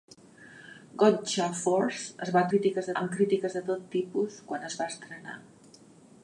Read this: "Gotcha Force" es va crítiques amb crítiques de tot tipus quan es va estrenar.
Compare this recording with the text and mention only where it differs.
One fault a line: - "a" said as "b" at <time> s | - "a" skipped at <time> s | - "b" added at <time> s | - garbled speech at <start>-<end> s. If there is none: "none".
none